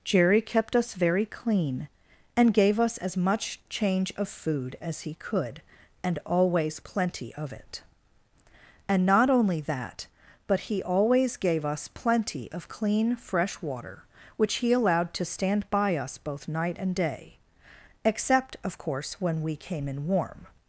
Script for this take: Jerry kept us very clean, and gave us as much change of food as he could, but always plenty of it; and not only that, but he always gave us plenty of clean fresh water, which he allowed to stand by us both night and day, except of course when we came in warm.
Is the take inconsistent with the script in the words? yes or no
yes